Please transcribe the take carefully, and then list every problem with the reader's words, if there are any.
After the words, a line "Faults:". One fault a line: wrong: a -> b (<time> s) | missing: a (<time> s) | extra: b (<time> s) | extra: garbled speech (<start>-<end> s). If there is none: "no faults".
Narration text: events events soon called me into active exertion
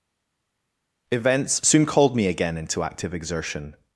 events soon called me again into active exertion
Faults:
missing: events (1.6 s)
extra: again (2.3 s)